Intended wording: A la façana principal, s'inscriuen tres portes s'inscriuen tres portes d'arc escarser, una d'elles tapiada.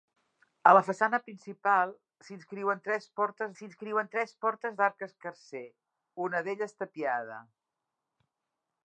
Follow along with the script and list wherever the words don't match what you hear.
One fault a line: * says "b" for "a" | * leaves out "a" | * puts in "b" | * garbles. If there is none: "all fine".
all fine